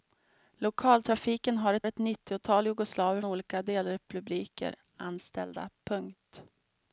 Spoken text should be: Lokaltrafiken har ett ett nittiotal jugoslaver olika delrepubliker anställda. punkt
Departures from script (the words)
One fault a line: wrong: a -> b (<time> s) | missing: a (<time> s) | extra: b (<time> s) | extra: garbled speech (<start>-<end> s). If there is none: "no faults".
no faults